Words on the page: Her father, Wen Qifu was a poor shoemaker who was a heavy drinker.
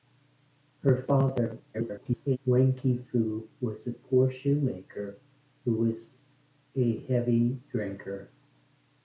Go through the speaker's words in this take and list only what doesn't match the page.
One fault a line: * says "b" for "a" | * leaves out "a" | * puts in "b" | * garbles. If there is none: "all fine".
* garbles